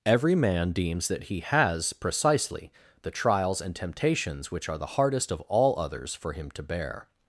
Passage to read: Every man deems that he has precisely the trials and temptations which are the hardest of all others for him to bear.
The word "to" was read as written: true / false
true